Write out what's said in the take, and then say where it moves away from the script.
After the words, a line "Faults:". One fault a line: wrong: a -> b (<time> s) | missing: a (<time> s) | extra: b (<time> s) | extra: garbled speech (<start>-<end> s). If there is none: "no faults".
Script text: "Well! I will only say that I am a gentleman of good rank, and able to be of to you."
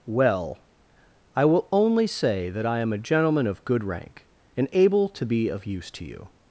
"Well! I will only say that I am a gentleman of good rank, and able to be of use to you."
Faults:
extra: use (5.7 s)